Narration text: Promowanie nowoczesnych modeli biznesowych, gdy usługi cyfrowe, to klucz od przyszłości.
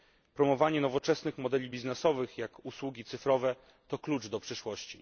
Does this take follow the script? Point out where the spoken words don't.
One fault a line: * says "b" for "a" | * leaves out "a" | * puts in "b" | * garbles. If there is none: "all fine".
* says "jak" for "gdy"
* says "do" for "od"